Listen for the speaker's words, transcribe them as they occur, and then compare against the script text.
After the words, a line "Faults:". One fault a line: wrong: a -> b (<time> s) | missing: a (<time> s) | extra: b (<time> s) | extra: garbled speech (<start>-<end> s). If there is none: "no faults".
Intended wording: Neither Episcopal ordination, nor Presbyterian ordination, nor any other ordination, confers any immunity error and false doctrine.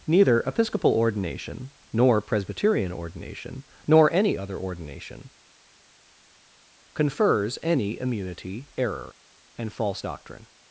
Neither Episcopal ordination, nor Presbyterian ordination, nor any other ordination, confers any immunity error and false doctrine.
Faults:
no faults